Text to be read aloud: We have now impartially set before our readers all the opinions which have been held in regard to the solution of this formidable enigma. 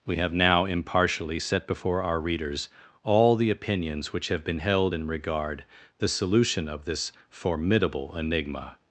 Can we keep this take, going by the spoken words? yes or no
no